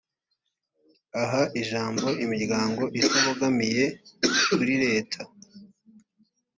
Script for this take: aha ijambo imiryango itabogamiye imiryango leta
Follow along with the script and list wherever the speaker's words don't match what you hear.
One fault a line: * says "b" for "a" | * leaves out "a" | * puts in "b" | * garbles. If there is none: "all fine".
* says "kuri" for "imiryango"